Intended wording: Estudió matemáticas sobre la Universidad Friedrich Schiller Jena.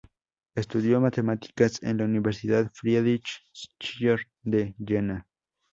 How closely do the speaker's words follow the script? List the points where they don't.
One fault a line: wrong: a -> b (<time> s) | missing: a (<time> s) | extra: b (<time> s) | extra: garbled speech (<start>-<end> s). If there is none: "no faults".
wrong: sobre -> en (1.8 s)
extra: de (4.4 s)